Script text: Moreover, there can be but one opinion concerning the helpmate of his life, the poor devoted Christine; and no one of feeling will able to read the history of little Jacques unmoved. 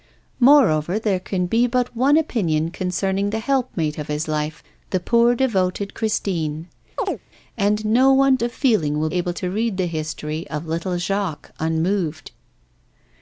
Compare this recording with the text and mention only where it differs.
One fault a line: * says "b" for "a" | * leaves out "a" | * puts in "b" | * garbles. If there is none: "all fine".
all fine